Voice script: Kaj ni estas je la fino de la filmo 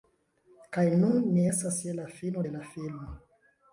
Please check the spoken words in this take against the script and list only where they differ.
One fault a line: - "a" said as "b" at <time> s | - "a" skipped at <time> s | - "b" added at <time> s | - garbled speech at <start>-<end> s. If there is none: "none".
- "nun" added at 1.0 s